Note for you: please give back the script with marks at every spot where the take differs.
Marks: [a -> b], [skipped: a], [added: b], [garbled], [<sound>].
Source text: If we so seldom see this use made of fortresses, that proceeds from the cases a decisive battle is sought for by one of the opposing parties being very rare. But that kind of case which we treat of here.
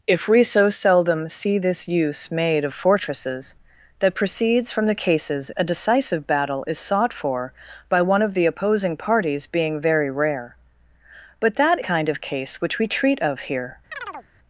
If we so seldom see this use made of fortresses, that proceeds from the cases a decisive battle is sought for by one of the opposing parties being very rare. But that kind of case which we treat of here. [chirp]